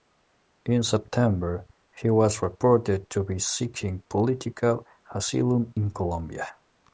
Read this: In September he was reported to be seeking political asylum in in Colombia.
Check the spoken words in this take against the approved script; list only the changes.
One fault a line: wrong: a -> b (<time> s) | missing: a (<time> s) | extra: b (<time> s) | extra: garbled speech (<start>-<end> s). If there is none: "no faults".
missing: in (5.9 s)